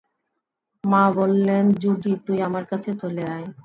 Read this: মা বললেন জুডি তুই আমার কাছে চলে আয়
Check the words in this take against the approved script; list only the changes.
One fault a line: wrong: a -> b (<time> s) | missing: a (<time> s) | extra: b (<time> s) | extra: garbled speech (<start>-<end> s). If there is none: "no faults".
no faults